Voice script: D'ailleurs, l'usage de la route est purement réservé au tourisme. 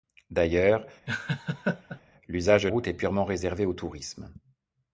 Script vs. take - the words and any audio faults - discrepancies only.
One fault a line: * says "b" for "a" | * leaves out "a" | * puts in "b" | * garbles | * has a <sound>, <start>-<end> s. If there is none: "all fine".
* has a laugh, 1.1-2.0 s
* leaves out "la"